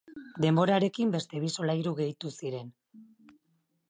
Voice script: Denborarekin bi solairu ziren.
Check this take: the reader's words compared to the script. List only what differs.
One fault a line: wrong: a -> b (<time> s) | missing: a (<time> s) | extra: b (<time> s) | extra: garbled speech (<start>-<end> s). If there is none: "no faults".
extra: beste (1.1 s)
extra: gehitu (2.0 s)